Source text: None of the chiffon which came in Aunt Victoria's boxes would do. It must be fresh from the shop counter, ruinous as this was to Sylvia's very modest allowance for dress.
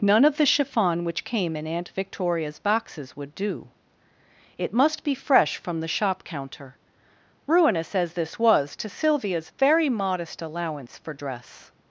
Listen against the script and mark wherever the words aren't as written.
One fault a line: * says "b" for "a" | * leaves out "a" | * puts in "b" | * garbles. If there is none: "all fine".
all fine